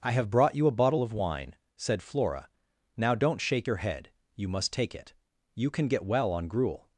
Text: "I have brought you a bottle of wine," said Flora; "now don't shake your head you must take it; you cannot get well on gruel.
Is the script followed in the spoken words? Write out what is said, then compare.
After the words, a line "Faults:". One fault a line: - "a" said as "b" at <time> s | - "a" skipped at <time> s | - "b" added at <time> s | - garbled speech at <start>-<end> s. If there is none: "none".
"I have brought you a bottle of wine," said Flora; "now don't shake your head you must take it; you can get well on gruel.
Faults:
- "cannot" said as "can" at 5.7 s